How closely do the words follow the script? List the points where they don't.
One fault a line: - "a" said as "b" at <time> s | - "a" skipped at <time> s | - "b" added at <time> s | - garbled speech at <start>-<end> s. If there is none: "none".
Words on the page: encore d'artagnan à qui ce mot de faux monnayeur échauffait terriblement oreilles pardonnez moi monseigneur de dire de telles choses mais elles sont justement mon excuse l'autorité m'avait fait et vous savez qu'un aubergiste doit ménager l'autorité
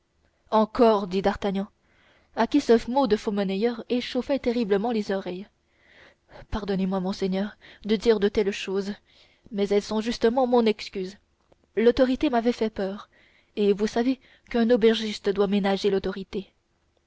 - "dit" added at 1.1 s
- "les" added at 4.9 s
- "peur" added at 12.7 s